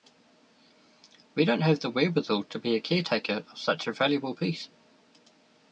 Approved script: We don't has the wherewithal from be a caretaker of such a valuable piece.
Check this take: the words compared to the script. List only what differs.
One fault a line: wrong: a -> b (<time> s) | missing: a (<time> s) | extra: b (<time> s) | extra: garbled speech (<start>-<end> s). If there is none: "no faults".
wrong: has -> have (1.6 s)
wrong: from -> to (2.5 s)